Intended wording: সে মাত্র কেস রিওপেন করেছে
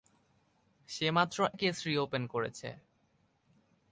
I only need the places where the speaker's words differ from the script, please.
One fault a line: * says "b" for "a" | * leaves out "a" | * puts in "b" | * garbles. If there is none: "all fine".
all fine